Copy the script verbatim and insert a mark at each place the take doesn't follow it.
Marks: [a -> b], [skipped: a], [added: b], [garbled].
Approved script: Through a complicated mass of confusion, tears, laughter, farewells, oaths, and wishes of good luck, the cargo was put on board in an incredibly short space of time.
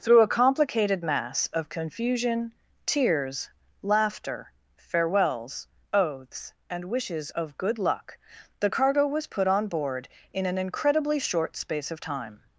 Through a complicated mass of confusion, tears, laughter, farewells, oaths, and wishes of good luck, the cargo was put on board in an incredibly short space of time.